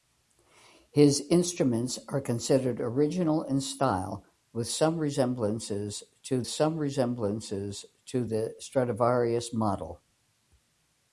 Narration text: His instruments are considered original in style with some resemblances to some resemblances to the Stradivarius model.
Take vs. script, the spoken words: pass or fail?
pass